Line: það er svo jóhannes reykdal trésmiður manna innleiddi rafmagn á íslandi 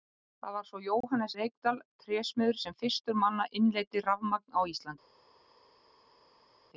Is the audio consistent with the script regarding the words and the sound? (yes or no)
no